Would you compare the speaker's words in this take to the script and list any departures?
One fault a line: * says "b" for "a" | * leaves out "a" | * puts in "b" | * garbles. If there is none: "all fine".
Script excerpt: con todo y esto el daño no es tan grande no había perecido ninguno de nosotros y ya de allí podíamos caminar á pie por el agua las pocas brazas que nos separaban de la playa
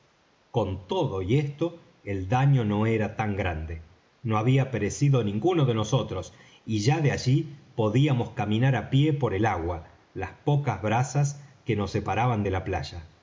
* says "era" for "es"